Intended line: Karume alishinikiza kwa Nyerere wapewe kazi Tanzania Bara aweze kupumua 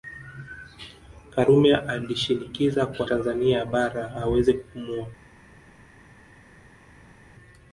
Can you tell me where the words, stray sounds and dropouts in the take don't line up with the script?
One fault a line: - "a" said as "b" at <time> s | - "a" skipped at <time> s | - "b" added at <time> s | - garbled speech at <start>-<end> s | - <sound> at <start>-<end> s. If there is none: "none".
- "Nyerere wapewe kazi" skipped at 3.1 s